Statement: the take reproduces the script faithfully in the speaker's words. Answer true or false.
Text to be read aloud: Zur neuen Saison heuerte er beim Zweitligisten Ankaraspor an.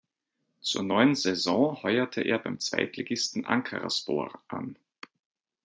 true